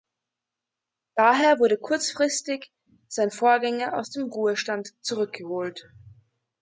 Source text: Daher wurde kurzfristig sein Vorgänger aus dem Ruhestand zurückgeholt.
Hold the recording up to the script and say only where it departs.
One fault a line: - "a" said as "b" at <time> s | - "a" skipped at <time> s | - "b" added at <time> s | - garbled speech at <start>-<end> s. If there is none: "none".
none